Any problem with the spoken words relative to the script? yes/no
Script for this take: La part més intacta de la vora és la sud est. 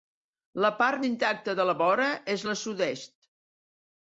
yes